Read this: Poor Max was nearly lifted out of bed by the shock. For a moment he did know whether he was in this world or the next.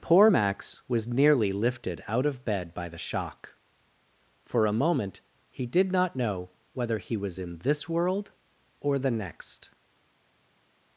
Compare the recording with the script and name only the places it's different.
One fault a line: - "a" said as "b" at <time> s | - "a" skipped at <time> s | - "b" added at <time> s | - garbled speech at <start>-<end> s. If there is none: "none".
- "not" added at 5.9 s